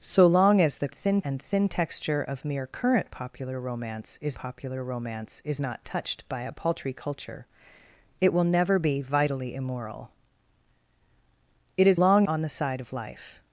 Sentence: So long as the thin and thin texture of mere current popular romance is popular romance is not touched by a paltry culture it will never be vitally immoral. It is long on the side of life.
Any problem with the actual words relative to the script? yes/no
no